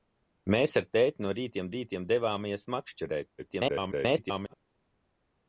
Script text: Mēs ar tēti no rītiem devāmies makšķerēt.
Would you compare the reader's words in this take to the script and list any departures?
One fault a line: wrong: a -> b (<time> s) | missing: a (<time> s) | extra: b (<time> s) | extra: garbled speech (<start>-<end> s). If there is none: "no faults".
extra: rītiem (1.8 s)
extra: garbled speech (3.4-4.5 s)